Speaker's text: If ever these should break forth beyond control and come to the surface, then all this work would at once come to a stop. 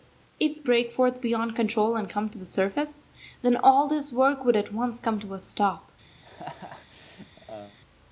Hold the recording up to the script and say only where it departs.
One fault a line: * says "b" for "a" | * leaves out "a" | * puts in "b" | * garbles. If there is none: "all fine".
* leaves out "ever these should"